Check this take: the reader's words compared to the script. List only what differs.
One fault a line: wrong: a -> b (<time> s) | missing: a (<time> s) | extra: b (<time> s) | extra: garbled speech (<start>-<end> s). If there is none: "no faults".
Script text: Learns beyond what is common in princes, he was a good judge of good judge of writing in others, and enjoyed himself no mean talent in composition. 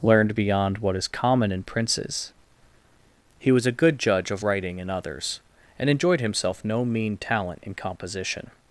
wrong: Learns -> Learned (0.0 s)
missing: good judge of (4.4 s)